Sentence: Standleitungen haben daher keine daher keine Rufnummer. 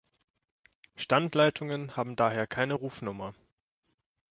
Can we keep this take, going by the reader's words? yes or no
no